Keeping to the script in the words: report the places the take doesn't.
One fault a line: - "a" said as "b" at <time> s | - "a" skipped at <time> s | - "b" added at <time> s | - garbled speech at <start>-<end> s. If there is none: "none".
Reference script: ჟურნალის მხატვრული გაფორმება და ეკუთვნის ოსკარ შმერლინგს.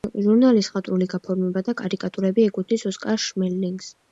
- "კარიკატურები" added at 1.8 s